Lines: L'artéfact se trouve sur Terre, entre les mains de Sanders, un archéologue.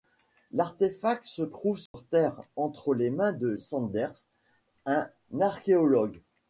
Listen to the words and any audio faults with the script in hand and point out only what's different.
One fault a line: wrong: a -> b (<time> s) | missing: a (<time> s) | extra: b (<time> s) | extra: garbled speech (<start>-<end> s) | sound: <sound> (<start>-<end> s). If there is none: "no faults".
sound: dropout (1.9-1.9 s)